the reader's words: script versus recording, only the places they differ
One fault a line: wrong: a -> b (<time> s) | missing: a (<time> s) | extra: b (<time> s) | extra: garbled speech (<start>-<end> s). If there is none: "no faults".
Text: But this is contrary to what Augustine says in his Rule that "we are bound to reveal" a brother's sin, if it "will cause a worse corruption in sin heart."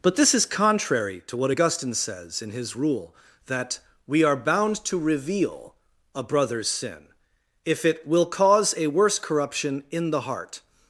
wrong: sin -> the (10.1 s)